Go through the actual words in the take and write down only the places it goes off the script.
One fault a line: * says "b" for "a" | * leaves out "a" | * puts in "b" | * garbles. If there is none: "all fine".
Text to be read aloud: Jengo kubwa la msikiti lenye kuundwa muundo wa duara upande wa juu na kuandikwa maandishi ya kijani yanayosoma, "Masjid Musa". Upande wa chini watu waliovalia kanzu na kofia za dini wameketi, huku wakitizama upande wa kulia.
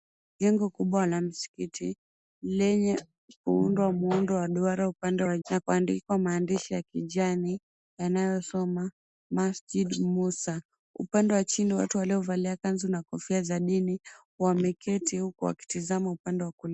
* leaves out "juu"